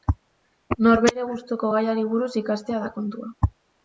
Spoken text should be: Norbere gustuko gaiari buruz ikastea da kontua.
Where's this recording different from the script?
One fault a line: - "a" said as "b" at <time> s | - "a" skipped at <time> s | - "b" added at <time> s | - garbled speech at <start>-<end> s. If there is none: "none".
none